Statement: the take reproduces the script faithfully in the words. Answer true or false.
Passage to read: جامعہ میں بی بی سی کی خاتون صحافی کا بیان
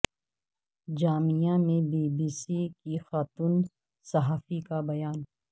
true